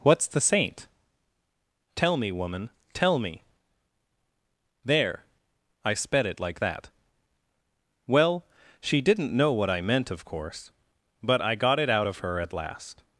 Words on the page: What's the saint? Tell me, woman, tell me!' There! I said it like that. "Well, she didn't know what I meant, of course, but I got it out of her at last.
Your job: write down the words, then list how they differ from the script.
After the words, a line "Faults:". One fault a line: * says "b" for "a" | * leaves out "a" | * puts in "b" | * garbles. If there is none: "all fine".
What's the saint? Tell me, woman, tell me!' There! I sped it like that. "Well, she didn't know what I meant, of course, but I got it out of her at last.
Faults:
* says "sped" for "said"